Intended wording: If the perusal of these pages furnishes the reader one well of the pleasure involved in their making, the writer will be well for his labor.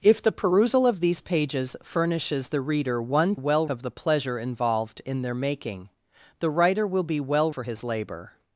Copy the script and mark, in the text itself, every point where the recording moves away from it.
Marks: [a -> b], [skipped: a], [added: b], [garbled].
If the perusal of these pages furnishes the reader one well of the pleasure involved in their making, the writer will be well for his labor.